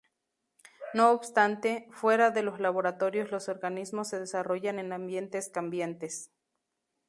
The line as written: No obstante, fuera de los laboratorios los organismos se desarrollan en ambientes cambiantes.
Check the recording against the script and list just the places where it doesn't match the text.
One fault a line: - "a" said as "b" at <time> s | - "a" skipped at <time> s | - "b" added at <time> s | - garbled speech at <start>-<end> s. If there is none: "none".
none